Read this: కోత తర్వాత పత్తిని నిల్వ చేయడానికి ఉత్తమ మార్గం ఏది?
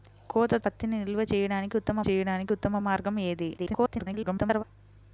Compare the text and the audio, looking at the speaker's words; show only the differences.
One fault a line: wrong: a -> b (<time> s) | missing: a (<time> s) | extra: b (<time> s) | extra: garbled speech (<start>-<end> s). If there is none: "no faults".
missing: తర్వాత (0.5 s)
extra: చేయడానికి ఉత్తమ (2.1 s)
extra: garbled speech (3.6-4.6 s)